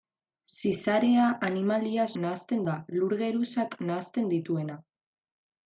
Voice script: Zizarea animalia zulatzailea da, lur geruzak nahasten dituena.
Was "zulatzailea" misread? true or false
true